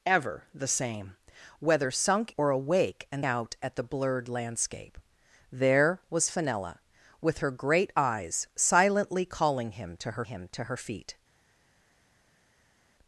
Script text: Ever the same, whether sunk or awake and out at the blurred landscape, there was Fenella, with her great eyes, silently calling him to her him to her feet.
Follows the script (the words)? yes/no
yes